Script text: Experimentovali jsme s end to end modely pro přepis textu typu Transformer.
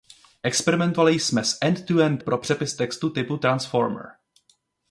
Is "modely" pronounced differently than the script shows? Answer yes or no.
yes